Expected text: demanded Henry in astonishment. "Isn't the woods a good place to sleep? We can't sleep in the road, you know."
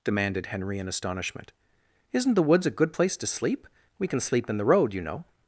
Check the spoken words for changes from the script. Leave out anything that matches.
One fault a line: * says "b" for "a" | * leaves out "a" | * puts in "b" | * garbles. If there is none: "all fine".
* says "can" for "can't"